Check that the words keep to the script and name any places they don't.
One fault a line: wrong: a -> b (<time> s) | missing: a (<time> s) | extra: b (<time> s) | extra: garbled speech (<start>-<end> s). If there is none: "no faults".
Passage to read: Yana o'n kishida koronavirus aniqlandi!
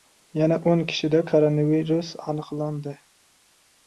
no faults